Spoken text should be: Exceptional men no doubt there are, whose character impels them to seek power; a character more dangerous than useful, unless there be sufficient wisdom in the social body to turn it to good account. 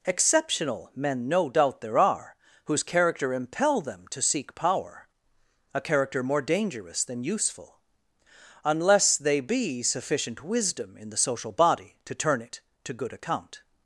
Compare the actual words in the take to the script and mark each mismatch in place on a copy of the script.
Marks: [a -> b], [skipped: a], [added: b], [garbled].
Exceptional men no doubt there are, whose character [impels -> impel] them to seek power; a character more dangerous than useful, unless [there -> they] be sufficient wisdom in the social body to turn it to good account.